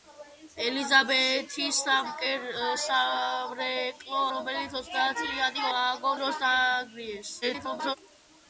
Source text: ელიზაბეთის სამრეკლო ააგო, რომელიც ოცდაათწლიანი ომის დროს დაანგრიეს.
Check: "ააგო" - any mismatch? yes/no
yes